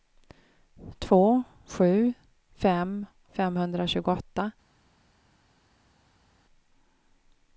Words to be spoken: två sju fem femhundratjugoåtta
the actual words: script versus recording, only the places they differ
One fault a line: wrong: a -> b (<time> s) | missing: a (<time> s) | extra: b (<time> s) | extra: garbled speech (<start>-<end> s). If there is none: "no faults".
no faults